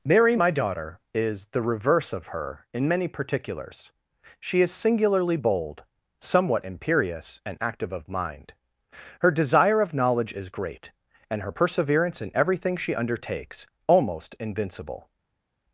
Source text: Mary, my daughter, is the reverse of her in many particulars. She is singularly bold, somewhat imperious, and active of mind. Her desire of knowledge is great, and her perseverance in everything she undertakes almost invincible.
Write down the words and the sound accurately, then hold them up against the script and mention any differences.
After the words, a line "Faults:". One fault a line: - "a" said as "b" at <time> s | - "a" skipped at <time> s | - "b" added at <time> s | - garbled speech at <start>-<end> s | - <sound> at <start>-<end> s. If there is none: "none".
Mary, my daughter, is the reverse of her in many particulars. She is singularly bold, somewhat imperious, and active of mind. Her desire of knowledge is great, and her perseverance in everything she undertakes almost invincible.
Faults:
none